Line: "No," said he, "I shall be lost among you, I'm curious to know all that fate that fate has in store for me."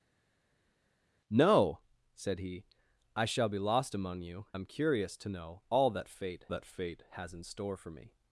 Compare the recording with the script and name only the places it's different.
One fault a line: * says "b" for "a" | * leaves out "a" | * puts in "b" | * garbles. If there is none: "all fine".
all fine